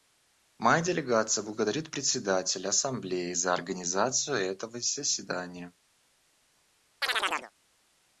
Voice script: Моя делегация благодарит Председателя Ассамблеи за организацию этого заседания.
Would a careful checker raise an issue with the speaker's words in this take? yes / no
no